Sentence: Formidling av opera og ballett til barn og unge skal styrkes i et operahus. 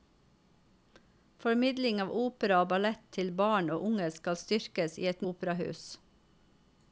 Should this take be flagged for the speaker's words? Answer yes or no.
no